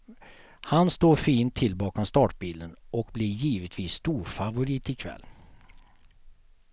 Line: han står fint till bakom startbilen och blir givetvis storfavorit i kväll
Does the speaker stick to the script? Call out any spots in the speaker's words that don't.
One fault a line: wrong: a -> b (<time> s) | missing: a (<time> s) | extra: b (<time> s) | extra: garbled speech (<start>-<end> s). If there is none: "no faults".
no faults